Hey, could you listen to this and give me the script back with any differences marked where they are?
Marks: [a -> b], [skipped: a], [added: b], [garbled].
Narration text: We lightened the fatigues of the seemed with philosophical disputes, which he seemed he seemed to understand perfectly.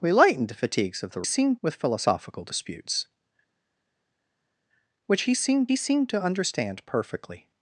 We lightened the fatigues of the seemed with philosophical disputes, which he seemed he seemed to understand perfectly.